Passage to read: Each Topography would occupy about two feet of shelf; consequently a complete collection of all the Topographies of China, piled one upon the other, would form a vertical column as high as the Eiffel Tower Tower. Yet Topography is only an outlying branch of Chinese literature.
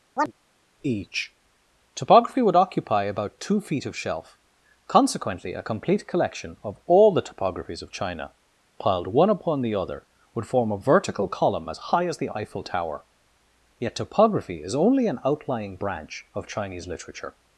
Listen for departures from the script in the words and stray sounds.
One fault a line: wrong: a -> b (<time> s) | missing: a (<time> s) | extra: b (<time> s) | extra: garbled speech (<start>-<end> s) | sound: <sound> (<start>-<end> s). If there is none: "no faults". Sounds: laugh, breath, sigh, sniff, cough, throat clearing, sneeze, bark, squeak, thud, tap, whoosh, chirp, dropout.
sound: chirp (0.2-0.3 s)
missing: Tower (13.0 s)